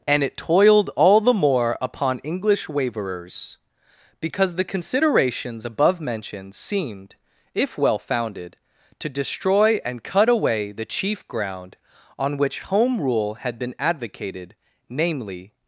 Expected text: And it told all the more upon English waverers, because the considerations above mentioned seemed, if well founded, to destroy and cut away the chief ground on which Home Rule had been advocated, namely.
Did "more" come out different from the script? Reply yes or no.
no